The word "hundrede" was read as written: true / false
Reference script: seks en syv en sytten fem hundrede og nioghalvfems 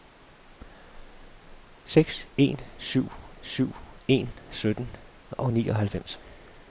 false